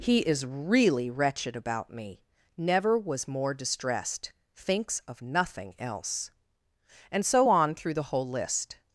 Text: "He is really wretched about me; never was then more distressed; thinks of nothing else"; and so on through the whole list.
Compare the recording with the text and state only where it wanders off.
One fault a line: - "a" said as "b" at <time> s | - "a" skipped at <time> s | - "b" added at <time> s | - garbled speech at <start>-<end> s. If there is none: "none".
- "then" skipped at 3.3 s